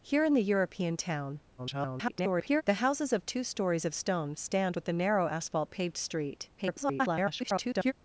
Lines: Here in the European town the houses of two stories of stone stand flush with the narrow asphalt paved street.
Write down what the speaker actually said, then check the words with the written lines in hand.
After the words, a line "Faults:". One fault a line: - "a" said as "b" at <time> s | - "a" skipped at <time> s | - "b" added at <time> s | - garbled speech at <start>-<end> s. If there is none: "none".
Here in the European town [garbled] the houses of two stories of stone stand with the narrow asphalt paved street. [garbled]
Faults:
- garbled speech at 1.6-2.6 s
- "flush" skipped at 4.7 s
- garbled speech at 6.6-7.9 s